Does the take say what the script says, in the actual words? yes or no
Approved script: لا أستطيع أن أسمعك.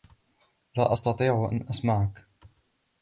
yes